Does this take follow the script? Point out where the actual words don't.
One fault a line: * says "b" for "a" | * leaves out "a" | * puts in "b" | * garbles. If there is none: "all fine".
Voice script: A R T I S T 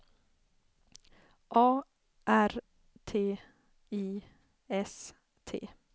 all fine